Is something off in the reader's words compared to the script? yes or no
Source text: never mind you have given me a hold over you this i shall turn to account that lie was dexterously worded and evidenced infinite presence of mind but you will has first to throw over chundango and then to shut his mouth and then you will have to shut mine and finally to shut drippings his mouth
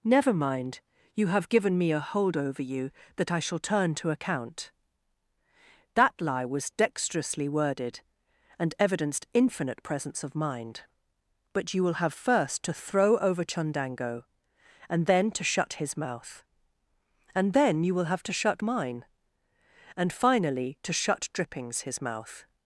yes